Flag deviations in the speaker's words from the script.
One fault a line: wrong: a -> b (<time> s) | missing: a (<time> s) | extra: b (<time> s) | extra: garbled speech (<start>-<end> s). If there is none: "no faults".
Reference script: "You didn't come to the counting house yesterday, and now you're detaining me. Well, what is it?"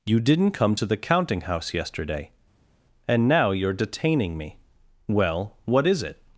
no faults